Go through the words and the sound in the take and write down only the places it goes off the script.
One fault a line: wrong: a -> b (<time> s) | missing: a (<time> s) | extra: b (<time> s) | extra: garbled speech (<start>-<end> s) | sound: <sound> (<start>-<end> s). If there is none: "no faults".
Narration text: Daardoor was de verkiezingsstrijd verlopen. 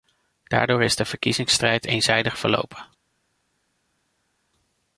wrong: was -> is (0.8 s)
extra: eenzijdig (1.8 s)